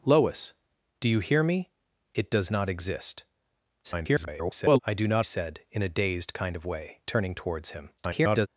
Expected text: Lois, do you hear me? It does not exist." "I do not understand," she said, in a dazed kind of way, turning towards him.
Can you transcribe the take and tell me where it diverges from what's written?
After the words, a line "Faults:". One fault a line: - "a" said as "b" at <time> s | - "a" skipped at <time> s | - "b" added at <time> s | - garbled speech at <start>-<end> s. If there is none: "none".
Lois, do you hear me? It does not exist." [garbled] "I do not said, in a dazed kind of way, turning towards him. [garbled]
Faults:
- garbled speech at 3.8-4.8 s
- "understand she" skipped at 5.3 s
- garbled speech at 8.0-8.5 s